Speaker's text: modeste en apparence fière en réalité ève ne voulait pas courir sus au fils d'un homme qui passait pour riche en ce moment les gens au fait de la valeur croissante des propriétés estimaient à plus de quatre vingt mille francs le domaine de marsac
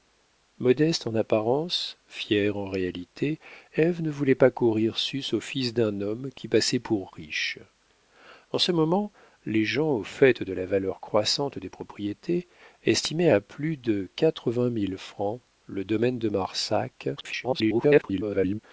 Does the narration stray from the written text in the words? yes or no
yes